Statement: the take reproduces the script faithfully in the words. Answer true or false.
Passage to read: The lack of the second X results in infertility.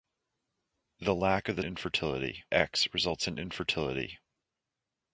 false